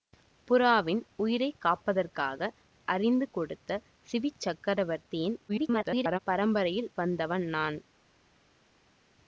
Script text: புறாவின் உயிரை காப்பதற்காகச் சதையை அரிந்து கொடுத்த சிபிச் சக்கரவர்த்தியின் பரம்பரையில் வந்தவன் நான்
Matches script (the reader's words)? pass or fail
fail